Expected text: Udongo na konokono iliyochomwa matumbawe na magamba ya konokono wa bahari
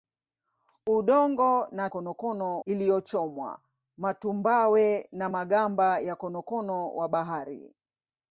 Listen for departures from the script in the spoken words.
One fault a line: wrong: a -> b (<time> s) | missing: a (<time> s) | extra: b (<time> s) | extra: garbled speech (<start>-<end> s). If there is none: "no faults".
no faults